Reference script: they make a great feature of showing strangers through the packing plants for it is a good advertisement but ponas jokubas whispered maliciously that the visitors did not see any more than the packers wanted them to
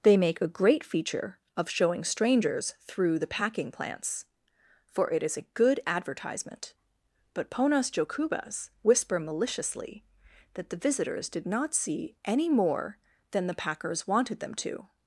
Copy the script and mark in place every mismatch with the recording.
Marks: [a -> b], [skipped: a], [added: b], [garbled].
they make a great feature of showing strangers through the packing plants for it is a good advertisement but ponas jokubas [whispered -> whisper] maliciously that the visitors did not see any more than the packers wanted them to